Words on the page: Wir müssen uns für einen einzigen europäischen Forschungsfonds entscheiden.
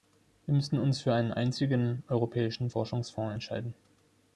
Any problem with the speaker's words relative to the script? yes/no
no